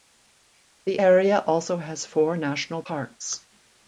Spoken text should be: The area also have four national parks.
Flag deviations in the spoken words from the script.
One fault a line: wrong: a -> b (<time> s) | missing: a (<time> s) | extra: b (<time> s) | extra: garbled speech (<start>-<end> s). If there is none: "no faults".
wrong: have -> has (1.8 s)